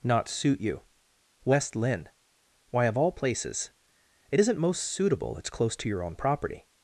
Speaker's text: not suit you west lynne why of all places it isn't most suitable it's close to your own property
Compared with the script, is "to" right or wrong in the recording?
right